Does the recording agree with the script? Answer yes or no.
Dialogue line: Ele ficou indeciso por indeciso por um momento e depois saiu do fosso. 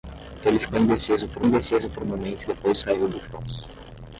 yes